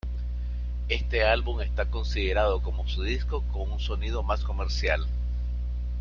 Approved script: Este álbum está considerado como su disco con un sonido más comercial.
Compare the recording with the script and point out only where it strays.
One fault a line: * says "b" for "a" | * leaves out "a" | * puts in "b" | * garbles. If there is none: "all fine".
all fine